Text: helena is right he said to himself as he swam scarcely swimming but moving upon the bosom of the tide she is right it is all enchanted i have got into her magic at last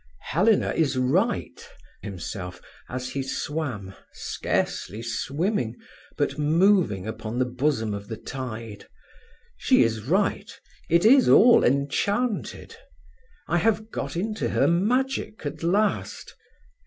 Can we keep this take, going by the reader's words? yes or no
no